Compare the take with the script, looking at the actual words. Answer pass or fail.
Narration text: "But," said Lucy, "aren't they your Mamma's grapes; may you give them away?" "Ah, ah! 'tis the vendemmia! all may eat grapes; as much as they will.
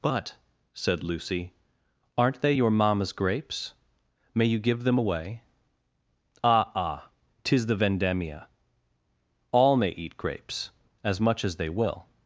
pass